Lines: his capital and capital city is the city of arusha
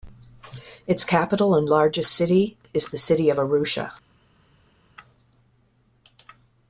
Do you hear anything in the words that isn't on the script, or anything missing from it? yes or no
yes